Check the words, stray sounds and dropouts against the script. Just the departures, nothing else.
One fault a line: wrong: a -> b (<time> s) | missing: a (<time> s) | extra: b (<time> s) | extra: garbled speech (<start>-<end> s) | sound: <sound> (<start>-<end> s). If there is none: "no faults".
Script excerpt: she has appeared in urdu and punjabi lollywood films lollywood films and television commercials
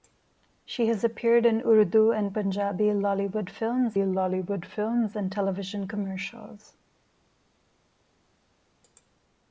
no faults